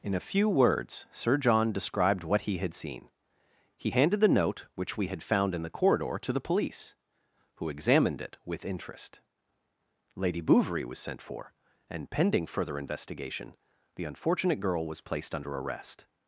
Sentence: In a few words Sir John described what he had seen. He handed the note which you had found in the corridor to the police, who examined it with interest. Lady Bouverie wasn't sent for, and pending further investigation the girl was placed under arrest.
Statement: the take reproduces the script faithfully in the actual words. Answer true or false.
false